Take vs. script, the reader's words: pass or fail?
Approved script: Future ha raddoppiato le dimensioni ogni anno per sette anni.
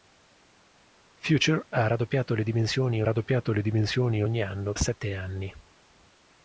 fail